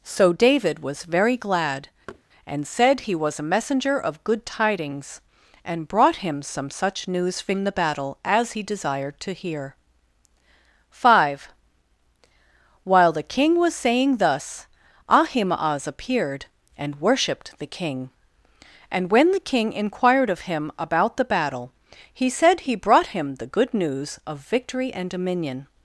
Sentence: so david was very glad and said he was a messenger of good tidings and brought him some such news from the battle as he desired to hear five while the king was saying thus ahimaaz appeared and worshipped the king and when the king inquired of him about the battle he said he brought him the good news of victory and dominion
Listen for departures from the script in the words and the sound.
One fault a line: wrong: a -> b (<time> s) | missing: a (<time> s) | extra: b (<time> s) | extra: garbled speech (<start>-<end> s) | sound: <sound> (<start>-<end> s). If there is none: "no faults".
sound: thud (2.1-2.2 s)